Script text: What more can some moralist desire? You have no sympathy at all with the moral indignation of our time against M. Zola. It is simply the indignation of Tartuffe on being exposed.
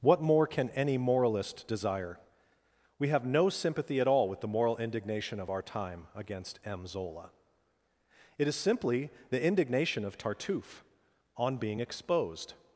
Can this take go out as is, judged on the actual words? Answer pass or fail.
fail